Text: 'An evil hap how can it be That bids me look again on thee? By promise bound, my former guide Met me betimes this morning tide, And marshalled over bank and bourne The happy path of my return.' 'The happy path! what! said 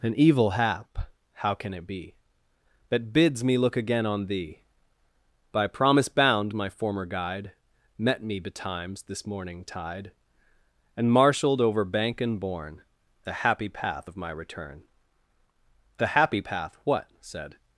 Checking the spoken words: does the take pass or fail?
pass